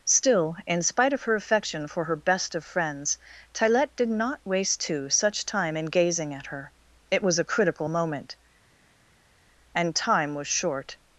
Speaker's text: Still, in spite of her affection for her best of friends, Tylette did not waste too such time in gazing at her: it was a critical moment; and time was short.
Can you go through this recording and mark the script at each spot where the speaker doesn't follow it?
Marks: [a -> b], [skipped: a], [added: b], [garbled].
Still, in spite of her affection for her best of friends, Tylette did not waste too such time in gazing at her: it was a critical moment; and time was short.